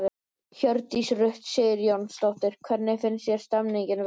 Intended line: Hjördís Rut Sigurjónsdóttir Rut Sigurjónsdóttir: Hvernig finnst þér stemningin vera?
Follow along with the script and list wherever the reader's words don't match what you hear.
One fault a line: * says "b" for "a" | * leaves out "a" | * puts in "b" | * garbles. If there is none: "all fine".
* leaves out "Rut Sigurjónsdóttir"